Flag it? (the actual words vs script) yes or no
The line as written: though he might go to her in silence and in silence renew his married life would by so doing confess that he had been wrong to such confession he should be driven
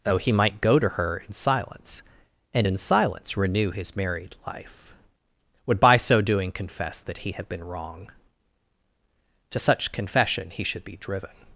no